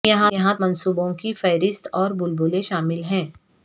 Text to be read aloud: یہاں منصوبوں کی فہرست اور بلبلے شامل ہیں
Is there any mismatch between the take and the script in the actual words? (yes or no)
no